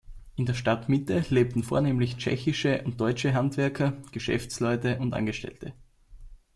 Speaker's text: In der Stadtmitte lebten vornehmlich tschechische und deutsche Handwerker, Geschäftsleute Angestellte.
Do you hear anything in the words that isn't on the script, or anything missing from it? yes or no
yes